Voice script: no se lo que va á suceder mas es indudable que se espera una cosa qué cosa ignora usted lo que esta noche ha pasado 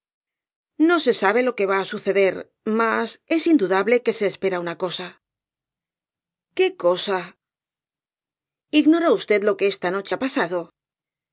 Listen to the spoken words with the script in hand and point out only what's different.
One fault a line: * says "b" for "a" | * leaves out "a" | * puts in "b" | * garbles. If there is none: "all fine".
* puts in "sabe"